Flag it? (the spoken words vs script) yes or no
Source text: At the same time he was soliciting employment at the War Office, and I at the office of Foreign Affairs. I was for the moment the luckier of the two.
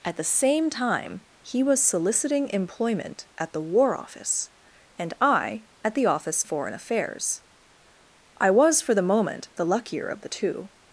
yes